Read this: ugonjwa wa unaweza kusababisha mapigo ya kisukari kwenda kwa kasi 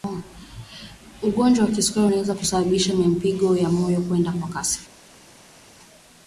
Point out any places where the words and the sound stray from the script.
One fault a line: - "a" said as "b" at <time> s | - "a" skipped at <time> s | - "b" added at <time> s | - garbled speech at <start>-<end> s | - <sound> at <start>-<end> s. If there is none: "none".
- "kisukari" added at 1.7 s
- "kisukari" said as "moyo" at 3.7 s